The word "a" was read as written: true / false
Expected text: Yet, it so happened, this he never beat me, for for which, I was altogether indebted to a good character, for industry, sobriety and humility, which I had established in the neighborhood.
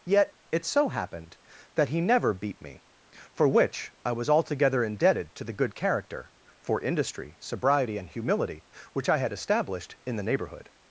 false